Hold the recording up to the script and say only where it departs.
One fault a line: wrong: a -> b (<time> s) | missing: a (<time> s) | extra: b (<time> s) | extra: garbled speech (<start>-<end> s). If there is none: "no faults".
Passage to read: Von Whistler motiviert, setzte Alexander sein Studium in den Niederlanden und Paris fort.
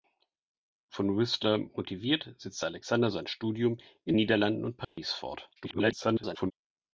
missing: den (4.2 s)
extra: garbled speech (5.6-6.5 s)